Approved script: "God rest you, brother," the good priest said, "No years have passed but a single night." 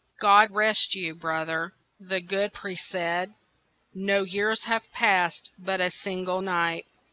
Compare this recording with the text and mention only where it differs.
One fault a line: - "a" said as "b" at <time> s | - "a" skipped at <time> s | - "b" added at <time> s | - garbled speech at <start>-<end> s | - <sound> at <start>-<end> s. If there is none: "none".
none